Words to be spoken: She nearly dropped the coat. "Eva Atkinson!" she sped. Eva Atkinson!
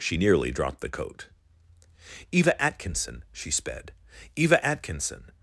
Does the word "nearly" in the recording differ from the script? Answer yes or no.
no